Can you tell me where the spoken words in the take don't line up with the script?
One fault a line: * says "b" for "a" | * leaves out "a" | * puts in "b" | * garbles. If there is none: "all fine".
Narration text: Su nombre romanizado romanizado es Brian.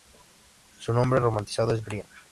* leaves out "romanizado"